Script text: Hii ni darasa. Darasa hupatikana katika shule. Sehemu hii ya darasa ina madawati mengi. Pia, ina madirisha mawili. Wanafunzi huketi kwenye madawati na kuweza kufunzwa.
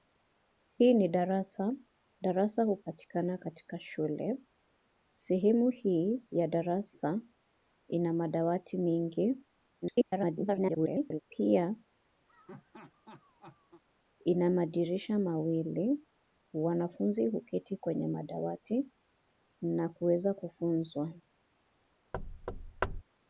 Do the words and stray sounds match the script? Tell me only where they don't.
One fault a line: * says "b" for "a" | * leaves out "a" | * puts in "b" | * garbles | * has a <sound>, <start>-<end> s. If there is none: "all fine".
* garbles
* has a laugh, 12.3-13.8 s
* has a thud, 22.1-23.0 s